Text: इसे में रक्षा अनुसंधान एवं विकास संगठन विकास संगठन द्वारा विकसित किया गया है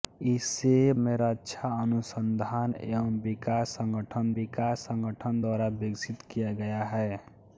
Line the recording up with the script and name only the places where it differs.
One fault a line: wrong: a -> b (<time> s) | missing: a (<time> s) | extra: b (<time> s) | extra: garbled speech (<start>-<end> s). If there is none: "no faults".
no faults